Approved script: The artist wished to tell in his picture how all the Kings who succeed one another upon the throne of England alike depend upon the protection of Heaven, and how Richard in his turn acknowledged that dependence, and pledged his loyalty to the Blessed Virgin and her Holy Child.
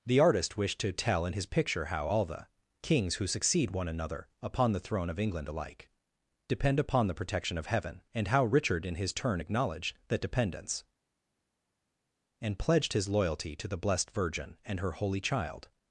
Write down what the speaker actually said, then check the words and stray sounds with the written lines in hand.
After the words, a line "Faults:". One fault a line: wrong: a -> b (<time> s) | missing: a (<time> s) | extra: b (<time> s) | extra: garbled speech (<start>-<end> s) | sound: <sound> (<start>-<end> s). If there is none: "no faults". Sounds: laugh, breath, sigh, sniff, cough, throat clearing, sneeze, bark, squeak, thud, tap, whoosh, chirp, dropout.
The artist wished to tell in his picture how all the Kings who succeed one another upon the throne of England alike depend upon the protection of Heaven, and how Richard in his turn acknowledged that dependence, and pledged his loyalty to the Blessed Virgin and her Holy Child.
Faults:
no faults